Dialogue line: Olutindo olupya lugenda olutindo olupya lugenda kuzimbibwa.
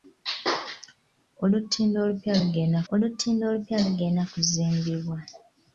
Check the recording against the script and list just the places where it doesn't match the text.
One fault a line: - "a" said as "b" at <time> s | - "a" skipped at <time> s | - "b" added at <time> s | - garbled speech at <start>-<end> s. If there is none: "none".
none